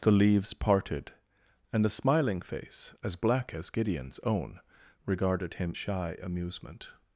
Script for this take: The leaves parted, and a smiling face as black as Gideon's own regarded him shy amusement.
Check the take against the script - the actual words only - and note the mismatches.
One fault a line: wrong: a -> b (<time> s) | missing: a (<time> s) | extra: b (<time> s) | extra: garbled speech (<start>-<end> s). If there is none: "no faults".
no faults